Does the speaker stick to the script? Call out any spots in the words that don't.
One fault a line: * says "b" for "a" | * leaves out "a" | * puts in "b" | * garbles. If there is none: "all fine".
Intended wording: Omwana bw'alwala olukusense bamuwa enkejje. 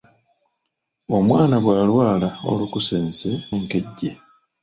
* leaves out "bamuwa"